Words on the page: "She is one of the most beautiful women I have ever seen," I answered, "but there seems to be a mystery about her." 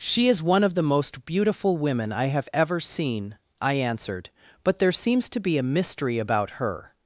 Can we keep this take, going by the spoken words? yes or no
yes